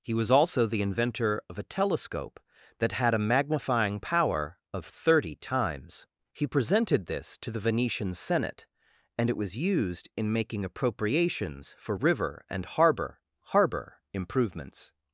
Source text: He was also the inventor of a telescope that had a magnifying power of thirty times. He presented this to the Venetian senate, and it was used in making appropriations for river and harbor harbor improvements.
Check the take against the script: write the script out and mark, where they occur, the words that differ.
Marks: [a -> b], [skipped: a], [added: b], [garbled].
He was also the inventor of a telescope that had a magnifying power of thirty times. He presented this to the Venetian senate, and it was used in making appropriations for river and harbor harbor improvements.